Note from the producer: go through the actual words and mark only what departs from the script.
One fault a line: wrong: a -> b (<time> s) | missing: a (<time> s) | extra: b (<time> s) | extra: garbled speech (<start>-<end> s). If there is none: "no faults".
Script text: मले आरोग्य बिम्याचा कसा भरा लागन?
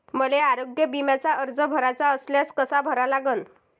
extra: अर्ज भराचा असल्यास (1.3 s)